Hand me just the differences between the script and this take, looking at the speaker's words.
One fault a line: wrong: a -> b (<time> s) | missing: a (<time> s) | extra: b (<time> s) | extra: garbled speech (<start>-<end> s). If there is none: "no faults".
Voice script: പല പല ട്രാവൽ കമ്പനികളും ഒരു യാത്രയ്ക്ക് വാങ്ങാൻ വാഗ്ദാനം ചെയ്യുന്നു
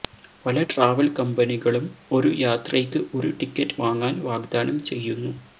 missing: പല (0.6 s)
extra: ഒരു ടിക്കറ്റ് (3.2 s)